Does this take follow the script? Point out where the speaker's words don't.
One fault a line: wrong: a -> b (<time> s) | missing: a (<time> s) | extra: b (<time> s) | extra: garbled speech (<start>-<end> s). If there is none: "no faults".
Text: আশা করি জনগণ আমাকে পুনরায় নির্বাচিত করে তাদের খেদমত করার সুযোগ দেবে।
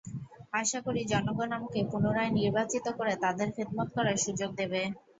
no faults